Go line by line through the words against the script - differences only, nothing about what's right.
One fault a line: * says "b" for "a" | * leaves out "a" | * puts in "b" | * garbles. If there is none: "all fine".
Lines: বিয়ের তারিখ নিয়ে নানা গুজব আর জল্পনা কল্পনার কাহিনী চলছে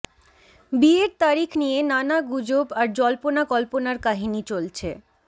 all fine